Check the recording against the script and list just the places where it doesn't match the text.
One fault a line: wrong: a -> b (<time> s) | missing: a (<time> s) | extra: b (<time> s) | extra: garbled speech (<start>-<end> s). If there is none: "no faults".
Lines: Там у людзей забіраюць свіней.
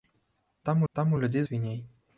extra: там (0.9 s)
missing: забіраюць (1.4 s)